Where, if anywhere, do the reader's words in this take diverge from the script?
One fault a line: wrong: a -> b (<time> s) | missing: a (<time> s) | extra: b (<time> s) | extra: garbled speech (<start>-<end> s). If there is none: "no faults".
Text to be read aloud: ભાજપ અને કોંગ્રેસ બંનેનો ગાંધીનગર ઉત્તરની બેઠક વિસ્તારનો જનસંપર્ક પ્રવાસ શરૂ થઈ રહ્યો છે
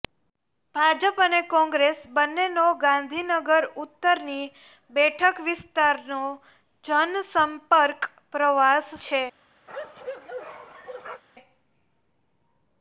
missing: શરૂ થઈ રહ્યો (9.0 s)